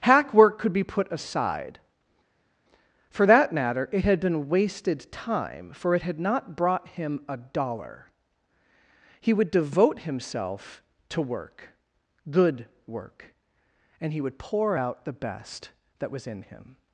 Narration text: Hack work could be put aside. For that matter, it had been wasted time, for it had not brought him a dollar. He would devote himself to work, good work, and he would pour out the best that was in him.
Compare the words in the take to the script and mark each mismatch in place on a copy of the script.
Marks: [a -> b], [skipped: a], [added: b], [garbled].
Hack work could be put aside. For that matter, it had been wasted time, for it had not brought him a dollar. He would devote himself to work, good work, and he would pour out the best that was in him.